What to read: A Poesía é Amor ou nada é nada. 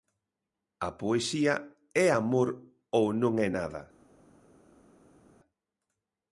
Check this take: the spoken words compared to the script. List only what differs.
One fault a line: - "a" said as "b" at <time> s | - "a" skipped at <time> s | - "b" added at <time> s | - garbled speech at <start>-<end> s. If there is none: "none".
- "nada" said as "non" at 3.2 s